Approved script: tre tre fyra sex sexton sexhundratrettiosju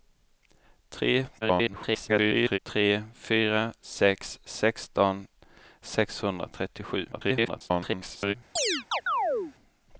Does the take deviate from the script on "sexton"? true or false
false